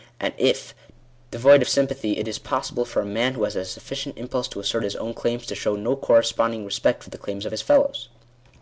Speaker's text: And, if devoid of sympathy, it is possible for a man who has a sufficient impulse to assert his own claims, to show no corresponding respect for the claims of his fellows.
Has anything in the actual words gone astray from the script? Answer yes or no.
no